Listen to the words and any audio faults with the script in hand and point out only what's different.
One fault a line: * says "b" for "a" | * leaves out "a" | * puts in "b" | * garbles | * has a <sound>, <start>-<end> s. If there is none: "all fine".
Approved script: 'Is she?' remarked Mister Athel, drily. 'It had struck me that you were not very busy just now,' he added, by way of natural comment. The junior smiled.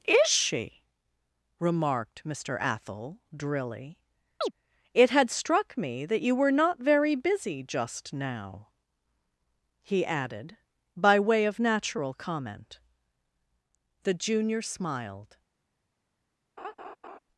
* has a chirp, 4.4-4.5 s
* has a laugh, 16.6-17.2 s